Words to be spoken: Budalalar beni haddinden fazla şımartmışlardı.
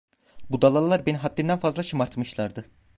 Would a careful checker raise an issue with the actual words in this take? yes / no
no